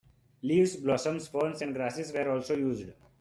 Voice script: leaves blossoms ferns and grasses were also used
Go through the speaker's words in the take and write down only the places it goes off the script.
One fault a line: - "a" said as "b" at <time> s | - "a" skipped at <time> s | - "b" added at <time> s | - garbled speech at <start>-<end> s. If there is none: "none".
none